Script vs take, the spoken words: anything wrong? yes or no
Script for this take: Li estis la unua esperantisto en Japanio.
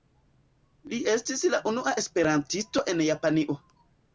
no